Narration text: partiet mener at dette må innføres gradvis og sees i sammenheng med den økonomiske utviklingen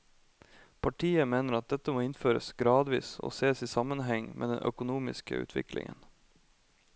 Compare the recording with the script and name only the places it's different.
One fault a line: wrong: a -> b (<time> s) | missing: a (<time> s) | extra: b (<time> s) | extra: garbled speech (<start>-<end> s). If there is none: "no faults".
no faults